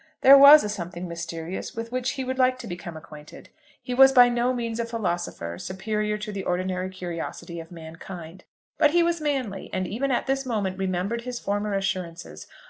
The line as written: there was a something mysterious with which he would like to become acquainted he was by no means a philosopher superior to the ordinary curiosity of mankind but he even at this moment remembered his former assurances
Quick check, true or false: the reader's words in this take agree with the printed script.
false